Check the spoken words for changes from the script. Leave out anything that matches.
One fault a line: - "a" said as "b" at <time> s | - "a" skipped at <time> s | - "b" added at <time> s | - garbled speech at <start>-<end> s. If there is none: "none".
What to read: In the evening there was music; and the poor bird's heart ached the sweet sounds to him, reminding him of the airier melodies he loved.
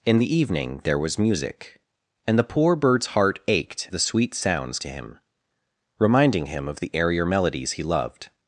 none